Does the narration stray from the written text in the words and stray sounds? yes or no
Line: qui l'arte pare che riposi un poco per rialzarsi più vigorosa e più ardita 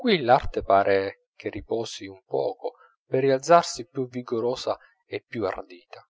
no